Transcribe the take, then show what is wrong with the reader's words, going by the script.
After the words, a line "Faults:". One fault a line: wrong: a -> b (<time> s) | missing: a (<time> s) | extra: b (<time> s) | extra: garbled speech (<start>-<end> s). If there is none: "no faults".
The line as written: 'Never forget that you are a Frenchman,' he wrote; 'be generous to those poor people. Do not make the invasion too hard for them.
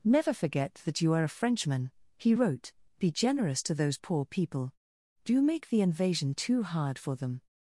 'Never forget that you are a Frenchman,' he wrote; 'be generous to those poor people. Do make the invasion too hard for them.
Faults:
missing: not (5.4 s)